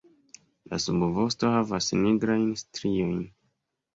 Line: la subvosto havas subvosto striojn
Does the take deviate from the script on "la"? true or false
false